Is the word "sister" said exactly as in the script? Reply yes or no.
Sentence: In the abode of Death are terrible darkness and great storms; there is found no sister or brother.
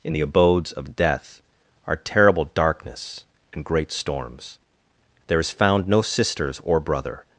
no